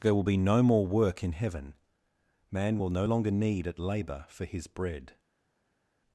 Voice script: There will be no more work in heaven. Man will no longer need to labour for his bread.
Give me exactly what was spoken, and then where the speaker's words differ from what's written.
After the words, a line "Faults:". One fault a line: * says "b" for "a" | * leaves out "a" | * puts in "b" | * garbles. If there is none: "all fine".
There will be no more work in heaven. Man will no longer need at labour for his bread.
Faults:
* says "at" for "to"